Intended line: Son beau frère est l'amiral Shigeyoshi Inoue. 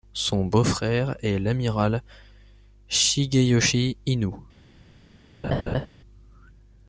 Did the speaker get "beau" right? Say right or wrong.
right